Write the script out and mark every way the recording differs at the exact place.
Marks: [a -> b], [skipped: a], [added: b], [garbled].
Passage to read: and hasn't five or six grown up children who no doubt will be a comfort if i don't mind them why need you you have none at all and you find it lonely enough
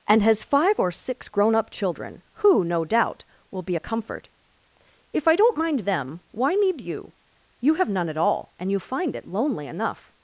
and [hasn't -> has] five or six grown up children who no doubt will be a comfort if i don't mind them why need you you have none at all and you find it lonely enough